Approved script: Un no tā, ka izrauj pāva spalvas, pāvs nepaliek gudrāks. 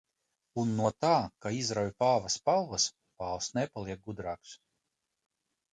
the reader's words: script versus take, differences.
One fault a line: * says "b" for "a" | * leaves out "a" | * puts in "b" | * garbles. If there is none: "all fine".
all fine